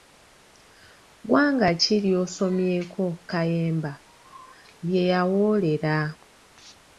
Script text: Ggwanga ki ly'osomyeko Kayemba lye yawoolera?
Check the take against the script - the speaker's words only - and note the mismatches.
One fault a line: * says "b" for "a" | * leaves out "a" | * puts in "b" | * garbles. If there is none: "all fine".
all fine